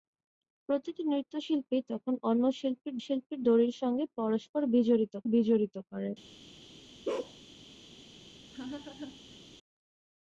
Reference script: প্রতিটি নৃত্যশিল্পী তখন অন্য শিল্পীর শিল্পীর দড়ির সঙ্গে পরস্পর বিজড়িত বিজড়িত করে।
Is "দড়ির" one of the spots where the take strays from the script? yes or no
no